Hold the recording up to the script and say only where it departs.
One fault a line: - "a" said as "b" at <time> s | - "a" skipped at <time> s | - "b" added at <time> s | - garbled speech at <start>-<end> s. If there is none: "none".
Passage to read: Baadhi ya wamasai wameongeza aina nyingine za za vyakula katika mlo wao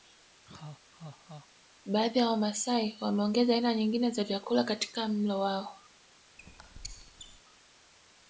- "za" skipped at 4.2 s